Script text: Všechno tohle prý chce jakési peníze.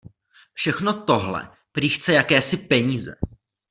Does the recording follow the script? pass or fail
pass